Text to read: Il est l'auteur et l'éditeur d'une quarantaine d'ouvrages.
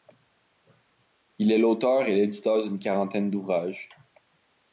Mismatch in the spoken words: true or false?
false